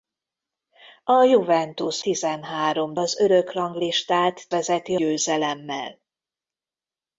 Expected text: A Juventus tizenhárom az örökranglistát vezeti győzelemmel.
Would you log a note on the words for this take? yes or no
no